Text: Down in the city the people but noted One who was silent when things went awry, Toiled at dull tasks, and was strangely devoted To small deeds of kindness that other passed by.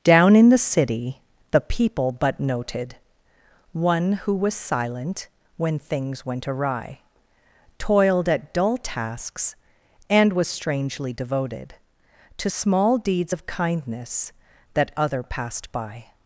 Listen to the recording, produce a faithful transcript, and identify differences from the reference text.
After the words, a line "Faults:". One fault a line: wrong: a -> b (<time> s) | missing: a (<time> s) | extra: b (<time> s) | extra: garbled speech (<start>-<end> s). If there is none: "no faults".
Down in the city the people but noted One who was silent when things went awry, Toiled at dull tasks, and was strangely devoted To small deeds of kindness that other passed by.
Faults:
no faults